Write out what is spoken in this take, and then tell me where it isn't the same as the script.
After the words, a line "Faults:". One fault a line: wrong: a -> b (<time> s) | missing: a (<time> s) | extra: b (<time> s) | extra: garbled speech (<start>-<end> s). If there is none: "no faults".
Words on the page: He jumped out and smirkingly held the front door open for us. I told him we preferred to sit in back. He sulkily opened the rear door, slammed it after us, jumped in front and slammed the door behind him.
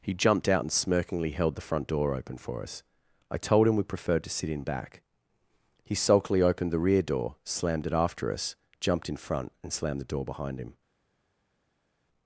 He jumped out and smirkingly held the front door open for us. I told him we preferred to sit in back. He sulkily opened the rear door, slammed it after us, jumped in front and slammed the door behind him.
Faults:
no faults